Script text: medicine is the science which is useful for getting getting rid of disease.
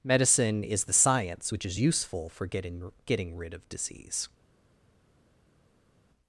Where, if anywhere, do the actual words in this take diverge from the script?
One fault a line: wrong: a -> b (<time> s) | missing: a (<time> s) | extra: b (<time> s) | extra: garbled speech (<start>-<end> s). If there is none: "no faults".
no faults